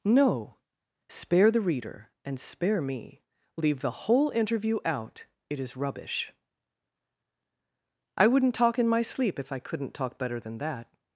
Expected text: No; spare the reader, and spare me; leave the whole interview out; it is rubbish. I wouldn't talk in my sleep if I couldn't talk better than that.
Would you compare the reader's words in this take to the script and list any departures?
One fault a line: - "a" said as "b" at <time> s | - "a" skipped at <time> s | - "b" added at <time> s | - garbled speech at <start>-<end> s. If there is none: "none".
none